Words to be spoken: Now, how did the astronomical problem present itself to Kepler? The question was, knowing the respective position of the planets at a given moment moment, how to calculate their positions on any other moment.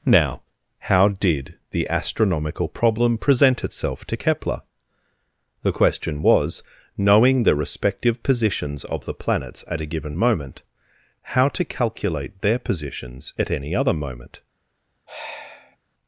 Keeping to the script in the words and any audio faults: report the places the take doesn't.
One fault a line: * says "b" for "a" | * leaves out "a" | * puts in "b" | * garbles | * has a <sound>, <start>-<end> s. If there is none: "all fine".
* says "positions" for "position"
* leaves out "moment"
* says "at" for "on"
* has a sigh, 15.1-15.8 s